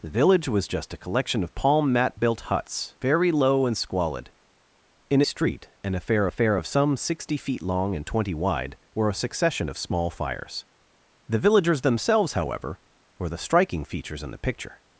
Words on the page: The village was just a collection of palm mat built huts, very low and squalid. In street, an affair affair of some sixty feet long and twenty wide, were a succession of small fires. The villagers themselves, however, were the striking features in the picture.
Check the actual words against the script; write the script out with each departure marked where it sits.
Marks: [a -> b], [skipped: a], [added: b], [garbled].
The village was just a collection of palm mat built huts, very low and squalid. In street, an affair affair of some sixty feet long and twenty wide, were a succession of small fires. The villagers themselves, however, were the striking features in the picture.